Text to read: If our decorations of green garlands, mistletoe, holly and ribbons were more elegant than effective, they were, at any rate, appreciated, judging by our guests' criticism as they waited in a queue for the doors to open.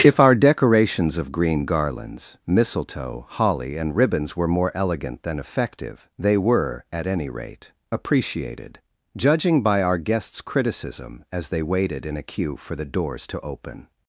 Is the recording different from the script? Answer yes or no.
no